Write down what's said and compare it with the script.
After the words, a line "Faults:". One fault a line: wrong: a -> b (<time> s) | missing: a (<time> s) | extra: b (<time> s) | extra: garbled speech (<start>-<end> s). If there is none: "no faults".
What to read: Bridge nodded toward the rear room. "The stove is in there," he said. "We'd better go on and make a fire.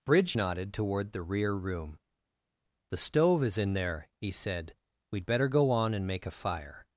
Bridge nodded toward the rear room. "The stove is in there," he said. "We'd better go on and make a fire.
Faults:
no faults